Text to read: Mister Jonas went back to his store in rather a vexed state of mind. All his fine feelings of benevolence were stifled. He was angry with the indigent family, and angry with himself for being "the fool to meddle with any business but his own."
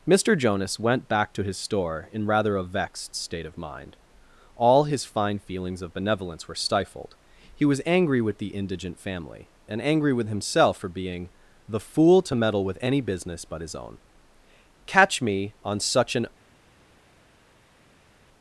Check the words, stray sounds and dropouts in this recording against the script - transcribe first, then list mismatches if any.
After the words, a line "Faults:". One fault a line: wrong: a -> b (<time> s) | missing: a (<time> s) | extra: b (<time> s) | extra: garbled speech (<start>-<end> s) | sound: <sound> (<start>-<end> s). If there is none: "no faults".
Mister Jonas went back to his store in rather a vexed state of mind. All his fine feelings of benevolence were stifled. He was angry with the indigent family, and angry with himself for being "the fool to meddle with any business but his own." "Catch me on such an
Faults:
extra: Catch me on such an (14.9 s)